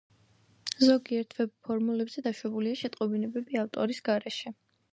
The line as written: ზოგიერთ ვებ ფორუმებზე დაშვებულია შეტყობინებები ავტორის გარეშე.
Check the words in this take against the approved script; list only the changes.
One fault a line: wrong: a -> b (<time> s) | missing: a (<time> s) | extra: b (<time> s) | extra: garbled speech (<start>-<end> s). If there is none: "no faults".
no faults